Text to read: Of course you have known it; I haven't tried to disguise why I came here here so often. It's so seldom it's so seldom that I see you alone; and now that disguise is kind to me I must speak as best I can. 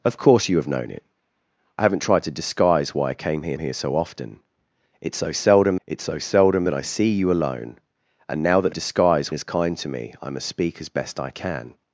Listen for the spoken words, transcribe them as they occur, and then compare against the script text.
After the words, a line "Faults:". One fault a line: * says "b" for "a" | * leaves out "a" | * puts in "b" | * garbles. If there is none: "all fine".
Of course you have known it; I haven't tried to disguise why I came here here so often. It's so seldom it's so seldom that I see you alone; and now that disguise is kind to me I must speak as best I can.
Faults:
all fine